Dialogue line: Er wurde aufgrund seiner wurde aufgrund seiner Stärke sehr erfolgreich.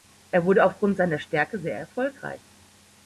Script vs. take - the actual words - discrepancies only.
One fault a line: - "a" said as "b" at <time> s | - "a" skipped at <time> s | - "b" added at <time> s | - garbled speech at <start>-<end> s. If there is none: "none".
- "wurde aufgrund seiner" skipped at 1.2 s